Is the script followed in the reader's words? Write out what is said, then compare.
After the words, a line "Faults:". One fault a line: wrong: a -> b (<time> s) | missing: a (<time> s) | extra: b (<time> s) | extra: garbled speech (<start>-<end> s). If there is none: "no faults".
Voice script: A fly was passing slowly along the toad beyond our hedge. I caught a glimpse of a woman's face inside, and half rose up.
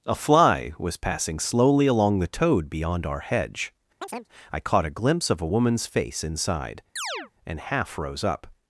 A fly was passing slowly along the toad beyond our hedge. I caught a glimpse of a woman's face inside, and half rose up.
Faults:
no faults